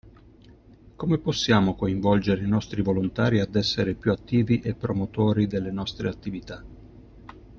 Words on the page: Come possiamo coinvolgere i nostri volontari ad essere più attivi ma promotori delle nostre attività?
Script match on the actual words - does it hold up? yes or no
no